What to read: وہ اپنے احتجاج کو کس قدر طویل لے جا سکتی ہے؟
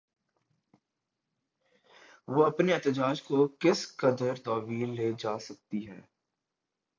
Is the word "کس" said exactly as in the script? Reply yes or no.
yes